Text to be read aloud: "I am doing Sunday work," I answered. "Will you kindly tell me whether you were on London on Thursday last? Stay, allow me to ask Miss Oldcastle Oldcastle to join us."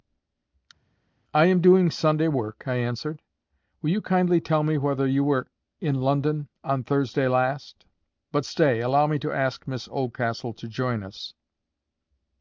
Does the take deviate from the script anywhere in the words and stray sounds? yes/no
yes